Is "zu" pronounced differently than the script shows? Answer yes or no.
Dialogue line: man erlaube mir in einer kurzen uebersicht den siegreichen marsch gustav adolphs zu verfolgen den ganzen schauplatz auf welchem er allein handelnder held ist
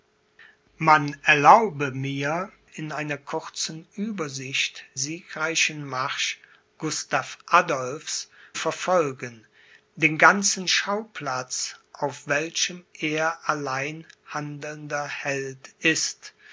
yes